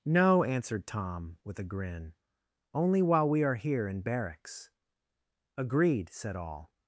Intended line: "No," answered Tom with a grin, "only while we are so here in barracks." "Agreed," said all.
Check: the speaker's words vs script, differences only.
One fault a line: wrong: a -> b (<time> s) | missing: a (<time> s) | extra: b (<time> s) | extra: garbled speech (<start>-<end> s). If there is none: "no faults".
missing: so (3.5 s)